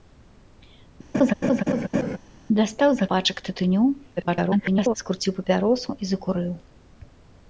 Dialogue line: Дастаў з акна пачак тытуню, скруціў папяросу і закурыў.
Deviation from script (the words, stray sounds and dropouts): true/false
true